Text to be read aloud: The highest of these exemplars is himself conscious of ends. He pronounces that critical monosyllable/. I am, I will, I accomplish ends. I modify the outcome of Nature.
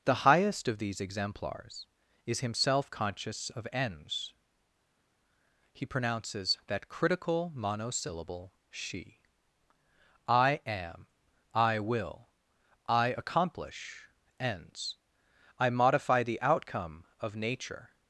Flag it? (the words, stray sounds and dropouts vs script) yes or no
yes